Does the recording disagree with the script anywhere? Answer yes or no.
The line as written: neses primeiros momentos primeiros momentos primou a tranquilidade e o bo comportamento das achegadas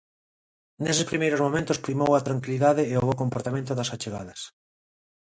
yes